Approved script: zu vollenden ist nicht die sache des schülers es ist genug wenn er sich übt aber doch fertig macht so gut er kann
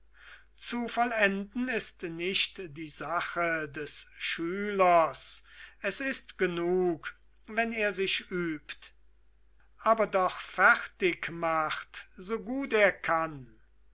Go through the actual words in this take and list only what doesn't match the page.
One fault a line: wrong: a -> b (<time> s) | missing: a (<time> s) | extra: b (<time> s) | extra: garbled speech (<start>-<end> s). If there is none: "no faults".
no faults